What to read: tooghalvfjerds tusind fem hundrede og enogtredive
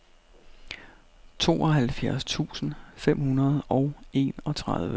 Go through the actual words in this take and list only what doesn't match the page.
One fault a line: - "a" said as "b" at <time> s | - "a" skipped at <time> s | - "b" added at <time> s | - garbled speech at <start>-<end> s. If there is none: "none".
none